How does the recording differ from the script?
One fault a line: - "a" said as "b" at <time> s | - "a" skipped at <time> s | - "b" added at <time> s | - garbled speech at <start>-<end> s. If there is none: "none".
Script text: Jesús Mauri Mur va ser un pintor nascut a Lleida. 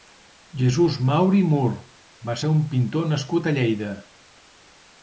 none